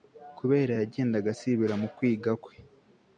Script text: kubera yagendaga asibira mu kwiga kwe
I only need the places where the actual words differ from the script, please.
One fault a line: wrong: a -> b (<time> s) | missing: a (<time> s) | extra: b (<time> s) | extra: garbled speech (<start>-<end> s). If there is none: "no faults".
no faults